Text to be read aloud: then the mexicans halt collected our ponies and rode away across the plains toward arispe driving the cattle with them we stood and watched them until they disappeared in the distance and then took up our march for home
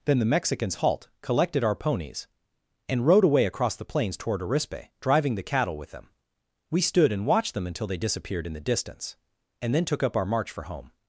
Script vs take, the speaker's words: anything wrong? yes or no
no